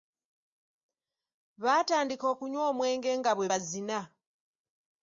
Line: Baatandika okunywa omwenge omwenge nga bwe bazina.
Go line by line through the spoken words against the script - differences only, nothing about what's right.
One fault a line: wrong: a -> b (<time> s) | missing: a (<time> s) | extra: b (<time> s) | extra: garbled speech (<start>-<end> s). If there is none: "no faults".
missing: omwenge (3.1 s)